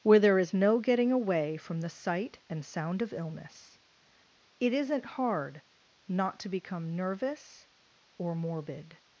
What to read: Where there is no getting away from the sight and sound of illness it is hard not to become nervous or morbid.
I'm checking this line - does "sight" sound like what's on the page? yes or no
yes